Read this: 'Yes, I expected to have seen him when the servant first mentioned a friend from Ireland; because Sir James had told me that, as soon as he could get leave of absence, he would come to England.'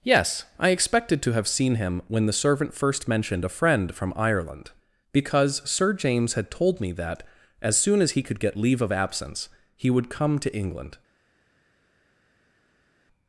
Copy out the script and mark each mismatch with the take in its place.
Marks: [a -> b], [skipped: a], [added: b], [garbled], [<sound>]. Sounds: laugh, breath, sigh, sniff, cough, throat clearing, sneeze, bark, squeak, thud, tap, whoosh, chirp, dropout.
'Yes, I expected to have seen him when the servant first mentioned a friend from Ireland; because Sir James had told me that, as soon as he could get leave of absence, he would come to England.'